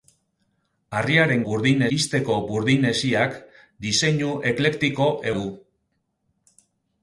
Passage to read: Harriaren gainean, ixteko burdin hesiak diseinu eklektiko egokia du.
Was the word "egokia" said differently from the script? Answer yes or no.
yes